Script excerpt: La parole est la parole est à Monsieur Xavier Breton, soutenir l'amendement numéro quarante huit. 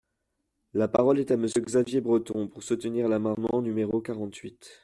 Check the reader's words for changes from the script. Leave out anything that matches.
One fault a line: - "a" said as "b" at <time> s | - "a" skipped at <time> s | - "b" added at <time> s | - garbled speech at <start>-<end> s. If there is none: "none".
- "la parole est" skipped at 1.3 s
- "pour" added at 2.5 s